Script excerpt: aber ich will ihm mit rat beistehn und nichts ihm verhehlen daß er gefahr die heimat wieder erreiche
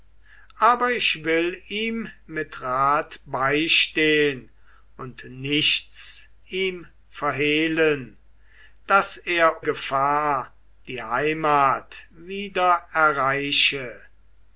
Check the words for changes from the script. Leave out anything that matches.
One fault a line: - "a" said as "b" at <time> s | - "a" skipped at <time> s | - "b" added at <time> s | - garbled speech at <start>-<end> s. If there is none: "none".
none